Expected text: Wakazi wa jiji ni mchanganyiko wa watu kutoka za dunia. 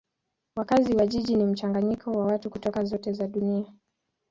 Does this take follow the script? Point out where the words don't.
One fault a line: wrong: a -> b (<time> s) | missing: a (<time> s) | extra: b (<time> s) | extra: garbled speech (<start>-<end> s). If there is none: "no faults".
extra: zote (2.8 s)